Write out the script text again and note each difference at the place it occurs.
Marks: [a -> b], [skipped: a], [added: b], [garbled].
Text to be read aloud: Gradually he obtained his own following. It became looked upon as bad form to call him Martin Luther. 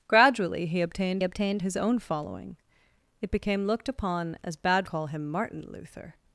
Gradually he obtained [added: obtained] his own following. It became looked upon as bad [skipped: form to] call him Martin Luther.